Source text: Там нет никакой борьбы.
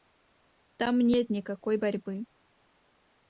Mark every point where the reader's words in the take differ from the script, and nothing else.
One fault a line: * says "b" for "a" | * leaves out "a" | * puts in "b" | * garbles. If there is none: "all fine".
all fine